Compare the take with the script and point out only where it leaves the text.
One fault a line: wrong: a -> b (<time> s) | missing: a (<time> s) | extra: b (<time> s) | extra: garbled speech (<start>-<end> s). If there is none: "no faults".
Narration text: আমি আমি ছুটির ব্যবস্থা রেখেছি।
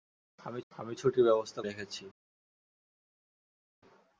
no faults